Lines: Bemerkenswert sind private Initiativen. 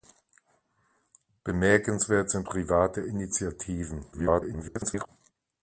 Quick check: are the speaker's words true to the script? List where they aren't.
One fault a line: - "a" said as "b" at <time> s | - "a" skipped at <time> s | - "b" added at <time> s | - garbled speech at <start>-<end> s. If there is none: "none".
- garbled speech at 4.1-5.1 s